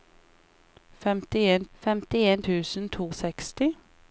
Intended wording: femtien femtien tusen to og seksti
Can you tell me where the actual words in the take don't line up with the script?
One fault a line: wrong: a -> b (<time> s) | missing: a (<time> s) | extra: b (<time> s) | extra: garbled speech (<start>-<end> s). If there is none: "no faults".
no faults